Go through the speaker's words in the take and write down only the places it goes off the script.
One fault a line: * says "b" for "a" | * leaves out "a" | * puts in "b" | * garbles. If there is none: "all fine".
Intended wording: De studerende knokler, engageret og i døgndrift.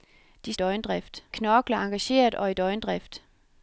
* says "døgndrift" for "studerende"